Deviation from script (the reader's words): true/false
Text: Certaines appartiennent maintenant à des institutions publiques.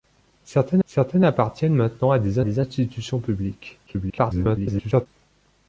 true